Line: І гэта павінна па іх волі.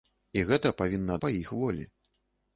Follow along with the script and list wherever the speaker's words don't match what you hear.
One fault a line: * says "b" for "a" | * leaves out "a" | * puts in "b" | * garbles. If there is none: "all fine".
all fine